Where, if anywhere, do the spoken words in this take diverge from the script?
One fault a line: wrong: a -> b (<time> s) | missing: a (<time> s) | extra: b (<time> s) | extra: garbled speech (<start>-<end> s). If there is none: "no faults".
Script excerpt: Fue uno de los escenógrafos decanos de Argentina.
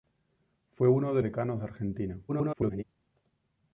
missing: los escenógrafos (1.2 s)
extra: garbled speech (2.3-2.8 s)